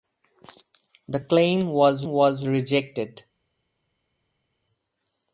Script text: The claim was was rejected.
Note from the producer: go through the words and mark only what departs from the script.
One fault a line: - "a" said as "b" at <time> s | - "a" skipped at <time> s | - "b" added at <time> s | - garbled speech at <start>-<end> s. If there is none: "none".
none